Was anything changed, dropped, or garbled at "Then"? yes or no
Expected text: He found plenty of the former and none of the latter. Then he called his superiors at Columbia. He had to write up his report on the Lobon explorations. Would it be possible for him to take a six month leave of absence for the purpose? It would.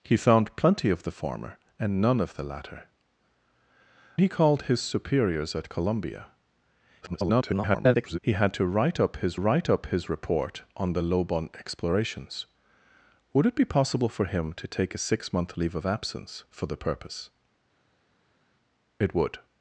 yes